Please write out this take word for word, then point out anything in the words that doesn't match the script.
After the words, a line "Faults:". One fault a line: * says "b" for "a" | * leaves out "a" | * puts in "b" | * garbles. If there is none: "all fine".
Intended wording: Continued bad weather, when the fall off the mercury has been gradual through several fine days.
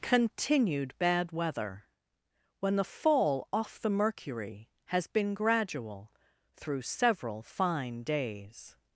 Continued bad weather, when the fall off the mercury has been gradual through several fine days.
Faults:
all fine